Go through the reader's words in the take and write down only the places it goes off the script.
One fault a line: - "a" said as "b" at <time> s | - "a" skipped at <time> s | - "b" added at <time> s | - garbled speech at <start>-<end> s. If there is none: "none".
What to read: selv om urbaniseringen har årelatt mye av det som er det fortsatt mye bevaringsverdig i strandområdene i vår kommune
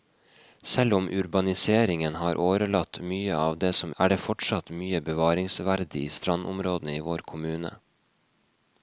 none